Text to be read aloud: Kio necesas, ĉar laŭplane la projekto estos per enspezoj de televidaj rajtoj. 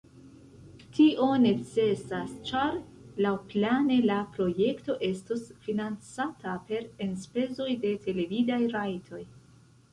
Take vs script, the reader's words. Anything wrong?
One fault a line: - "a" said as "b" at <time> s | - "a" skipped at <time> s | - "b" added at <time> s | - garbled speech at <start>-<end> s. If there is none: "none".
- "Kio" said as "Tio" at 0.9 s
- "financata" added at 5.7 s